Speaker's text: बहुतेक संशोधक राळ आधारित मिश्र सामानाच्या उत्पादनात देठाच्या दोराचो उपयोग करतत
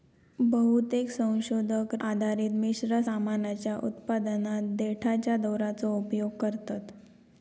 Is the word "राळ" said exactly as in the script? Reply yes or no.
no